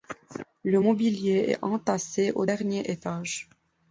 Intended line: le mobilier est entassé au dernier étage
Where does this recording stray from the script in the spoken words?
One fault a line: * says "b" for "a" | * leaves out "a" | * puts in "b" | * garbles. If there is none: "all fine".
all fine